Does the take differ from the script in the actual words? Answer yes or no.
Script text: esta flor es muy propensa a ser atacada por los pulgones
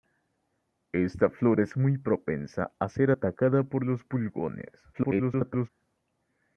yes